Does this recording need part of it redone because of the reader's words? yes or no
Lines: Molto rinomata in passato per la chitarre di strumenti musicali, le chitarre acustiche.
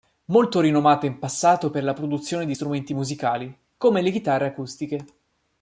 yes